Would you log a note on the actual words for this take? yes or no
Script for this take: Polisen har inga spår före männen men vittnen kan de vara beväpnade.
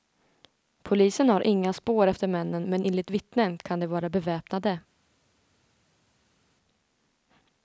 yes